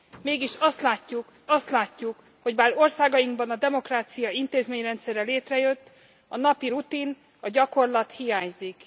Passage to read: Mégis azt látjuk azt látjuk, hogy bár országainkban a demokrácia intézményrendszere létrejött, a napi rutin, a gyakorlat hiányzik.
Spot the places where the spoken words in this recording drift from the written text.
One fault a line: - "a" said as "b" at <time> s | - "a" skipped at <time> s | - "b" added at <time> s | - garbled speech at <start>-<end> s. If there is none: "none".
none